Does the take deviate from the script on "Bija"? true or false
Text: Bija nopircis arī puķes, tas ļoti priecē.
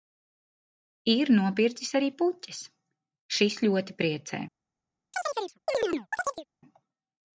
true